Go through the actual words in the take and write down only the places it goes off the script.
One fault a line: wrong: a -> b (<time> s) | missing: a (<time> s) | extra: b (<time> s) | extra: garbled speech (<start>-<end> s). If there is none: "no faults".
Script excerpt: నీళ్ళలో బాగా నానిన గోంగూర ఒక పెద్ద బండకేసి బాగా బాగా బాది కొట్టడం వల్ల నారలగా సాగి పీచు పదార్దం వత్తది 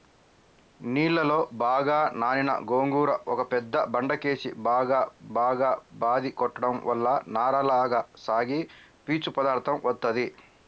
no faults